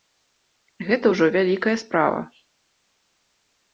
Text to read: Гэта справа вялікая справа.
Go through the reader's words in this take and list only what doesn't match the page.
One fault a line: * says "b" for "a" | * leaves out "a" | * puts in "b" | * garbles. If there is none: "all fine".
* says "ўжо" for "справа"